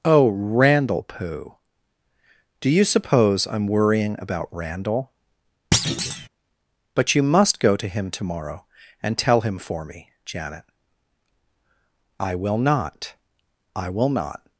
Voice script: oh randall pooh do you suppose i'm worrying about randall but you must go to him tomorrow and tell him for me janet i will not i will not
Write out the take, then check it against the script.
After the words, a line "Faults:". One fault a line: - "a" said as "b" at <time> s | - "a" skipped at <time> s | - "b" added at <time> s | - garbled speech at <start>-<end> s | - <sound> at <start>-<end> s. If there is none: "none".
oh randall pooh do you suppose i'm worrying about randall but you must go to him tomorrow and tell him for me janet i will not i will not
Faults:
- thud at 5.7-6.3 s